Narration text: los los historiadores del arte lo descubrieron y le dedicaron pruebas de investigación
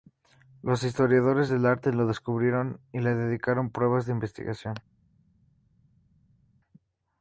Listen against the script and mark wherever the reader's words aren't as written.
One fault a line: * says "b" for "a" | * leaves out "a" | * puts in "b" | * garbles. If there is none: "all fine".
* leaves out "los"